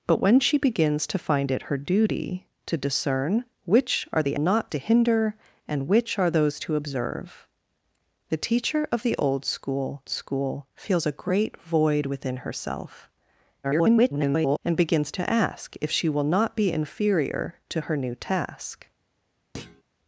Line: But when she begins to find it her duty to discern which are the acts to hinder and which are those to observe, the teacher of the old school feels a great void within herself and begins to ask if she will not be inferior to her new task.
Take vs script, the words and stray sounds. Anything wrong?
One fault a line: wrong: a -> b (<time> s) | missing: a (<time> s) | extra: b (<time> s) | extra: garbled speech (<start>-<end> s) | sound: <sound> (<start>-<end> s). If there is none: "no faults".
wrong: acts -> not (4.4 s)
extra: school (10.1 s)
extra: garbled speech (13.6-14.6 s)
sound: thud (19.5-19.8 s)